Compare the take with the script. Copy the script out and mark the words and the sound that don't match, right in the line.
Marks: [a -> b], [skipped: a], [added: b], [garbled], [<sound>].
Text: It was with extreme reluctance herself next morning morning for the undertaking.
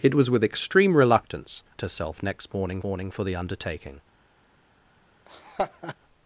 It was with extreme reluctance herself next morning morning for the undertaking. [laugh]